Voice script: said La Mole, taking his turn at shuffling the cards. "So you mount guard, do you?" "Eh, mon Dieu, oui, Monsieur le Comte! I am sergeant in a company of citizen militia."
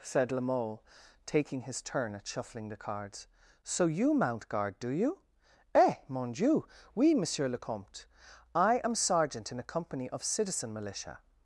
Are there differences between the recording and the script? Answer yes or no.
no